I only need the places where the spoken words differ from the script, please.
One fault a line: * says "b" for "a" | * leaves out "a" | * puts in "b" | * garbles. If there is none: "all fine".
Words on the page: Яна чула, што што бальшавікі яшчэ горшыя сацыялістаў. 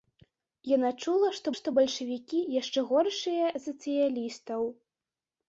all fine